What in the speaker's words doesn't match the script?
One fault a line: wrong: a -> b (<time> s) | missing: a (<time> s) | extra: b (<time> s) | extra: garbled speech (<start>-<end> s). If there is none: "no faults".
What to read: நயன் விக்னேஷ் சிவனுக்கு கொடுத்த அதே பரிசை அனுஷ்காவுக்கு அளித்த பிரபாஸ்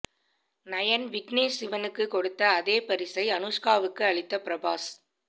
no faults